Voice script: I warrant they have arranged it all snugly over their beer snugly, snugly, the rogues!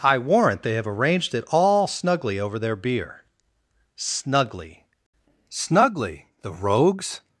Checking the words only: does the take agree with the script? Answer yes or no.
yes